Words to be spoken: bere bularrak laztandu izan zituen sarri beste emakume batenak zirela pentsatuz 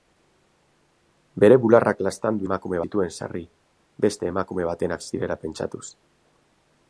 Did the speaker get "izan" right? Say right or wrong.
wrong